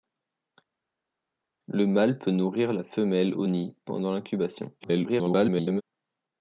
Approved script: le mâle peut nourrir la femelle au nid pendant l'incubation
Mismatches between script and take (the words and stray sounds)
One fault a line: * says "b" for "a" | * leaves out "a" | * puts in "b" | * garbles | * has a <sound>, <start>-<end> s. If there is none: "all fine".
* garbles